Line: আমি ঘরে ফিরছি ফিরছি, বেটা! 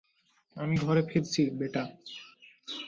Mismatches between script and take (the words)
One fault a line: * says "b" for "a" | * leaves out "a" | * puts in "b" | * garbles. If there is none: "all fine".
* leaves out "ফিরছি"